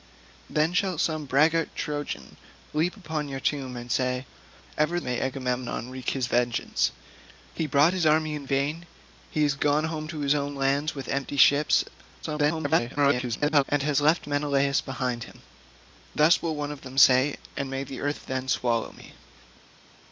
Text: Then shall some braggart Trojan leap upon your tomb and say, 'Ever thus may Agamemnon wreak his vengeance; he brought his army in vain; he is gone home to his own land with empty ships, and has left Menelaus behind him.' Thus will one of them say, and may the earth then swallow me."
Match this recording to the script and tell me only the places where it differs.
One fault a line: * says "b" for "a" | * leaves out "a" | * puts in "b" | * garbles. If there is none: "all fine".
* leaves out "thus"
* garbles